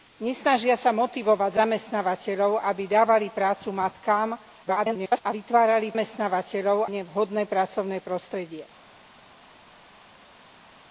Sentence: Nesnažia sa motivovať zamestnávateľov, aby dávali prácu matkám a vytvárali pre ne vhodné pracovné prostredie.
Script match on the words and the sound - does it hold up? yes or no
no